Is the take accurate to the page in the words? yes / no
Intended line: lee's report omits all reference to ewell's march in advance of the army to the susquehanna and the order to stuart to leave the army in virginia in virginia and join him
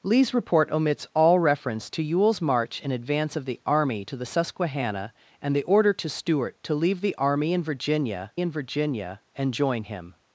yes